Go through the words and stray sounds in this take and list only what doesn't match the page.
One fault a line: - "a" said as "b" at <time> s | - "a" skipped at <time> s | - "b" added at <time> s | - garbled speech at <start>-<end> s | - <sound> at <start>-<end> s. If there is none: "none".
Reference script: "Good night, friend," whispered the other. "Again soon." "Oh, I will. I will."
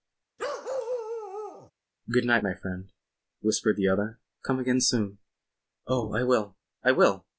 - bark at 0.4-1.7 s
- "my" added at 2.4 s
- "Come" added at 4.4 s